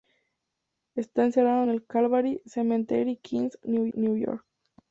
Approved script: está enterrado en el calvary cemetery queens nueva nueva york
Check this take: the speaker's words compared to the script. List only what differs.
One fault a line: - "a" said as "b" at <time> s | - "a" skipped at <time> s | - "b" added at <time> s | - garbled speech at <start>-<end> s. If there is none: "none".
none